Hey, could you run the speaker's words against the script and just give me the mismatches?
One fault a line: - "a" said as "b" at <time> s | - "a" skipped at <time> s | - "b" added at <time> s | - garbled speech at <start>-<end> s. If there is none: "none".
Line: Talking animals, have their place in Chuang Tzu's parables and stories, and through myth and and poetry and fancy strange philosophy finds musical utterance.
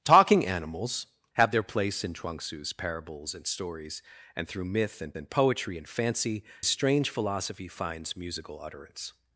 none